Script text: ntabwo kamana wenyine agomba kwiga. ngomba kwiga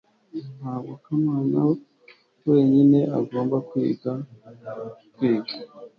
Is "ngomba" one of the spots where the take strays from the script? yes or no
yes